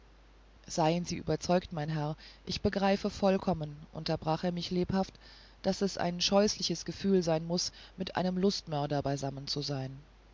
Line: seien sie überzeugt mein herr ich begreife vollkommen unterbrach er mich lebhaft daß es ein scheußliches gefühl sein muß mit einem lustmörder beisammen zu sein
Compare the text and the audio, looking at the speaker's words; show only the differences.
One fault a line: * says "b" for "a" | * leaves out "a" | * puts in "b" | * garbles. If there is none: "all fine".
all fine